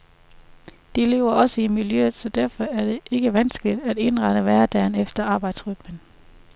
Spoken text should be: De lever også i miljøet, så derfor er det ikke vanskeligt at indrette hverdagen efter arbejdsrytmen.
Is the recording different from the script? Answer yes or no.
no